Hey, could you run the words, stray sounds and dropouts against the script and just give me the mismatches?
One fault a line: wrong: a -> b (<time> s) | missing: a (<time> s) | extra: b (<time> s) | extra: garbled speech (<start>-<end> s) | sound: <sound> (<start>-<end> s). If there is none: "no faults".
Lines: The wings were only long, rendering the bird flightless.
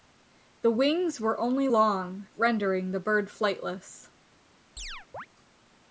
sound: chirp (4.8-5.3 s)